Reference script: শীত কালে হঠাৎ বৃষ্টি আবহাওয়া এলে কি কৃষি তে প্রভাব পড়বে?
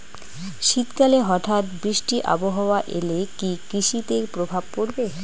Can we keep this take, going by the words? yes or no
yes